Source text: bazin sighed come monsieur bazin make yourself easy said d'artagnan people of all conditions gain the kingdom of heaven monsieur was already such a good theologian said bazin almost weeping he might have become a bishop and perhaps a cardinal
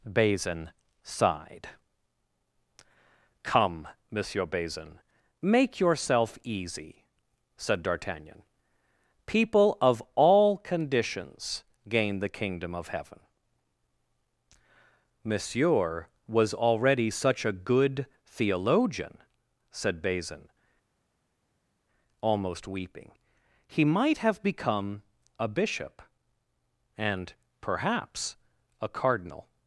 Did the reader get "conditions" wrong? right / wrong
right